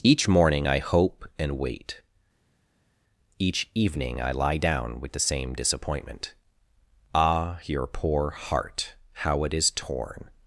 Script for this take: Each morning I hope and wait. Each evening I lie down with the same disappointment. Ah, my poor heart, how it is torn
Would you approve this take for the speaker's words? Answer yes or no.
no